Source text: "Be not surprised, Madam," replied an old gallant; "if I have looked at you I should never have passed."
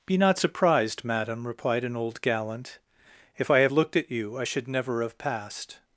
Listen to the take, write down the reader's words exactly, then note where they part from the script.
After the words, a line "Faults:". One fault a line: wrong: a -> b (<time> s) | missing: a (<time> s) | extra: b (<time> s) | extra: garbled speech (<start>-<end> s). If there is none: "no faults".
"Be not surprised, Madam," replied an old gallant; "if I have looked at you I should never have passed."
Faults:
no faults